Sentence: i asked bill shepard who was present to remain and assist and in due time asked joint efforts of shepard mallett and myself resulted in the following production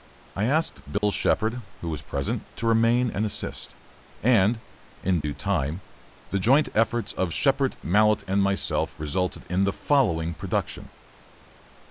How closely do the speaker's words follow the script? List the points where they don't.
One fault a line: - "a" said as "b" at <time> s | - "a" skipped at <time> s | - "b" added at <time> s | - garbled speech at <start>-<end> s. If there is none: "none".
- "asked" said as "the" at 6.3 s